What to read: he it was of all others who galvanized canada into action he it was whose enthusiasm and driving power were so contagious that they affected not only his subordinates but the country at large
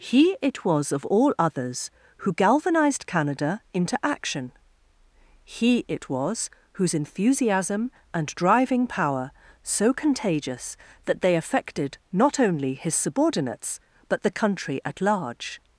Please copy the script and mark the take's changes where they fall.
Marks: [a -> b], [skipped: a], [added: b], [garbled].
he it was of all others who galvanized canada into action he it was whose enthusiasm and driving power [skipped: were] so contagious that they affected not only his subordinates but the country at large